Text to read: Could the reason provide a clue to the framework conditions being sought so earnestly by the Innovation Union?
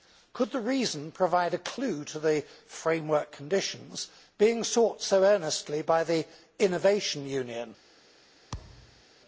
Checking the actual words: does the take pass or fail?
pass